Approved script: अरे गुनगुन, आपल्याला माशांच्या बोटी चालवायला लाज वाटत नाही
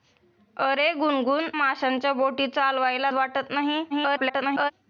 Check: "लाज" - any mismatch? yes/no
yes